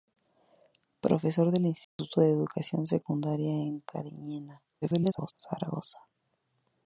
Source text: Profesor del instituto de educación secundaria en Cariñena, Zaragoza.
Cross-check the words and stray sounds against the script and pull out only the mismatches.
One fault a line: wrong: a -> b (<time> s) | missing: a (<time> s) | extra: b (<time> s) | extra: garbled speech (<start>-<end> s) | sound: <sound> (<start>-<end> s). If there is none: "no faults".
sound: dropout (1.8-2.0 s)
extra: garbled speech (4.8-5.3 s)